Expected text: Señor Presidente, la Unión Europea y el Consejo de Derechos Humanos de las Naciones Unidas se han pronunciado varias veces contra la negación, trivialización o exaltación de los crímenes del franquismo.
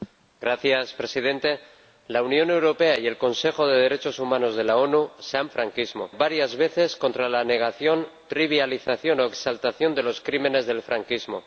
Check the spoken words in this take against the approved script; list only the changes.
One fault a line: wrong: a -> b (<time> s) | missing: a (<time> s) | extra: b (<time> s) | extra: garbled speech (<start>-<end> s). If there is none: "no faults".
wrong: pronunciado -> franquismo (5.5 s)